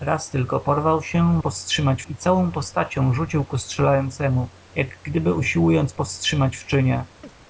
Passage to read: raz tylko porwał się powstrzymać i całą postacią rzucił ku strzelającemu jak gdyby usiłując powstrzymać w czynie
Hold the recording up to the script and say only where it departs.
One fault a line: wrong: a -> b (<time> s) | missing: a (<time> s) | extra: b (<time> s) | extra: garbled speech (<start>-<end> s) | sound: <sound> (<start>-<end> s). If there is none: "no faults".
sound: chirp (7.2-7.3 s)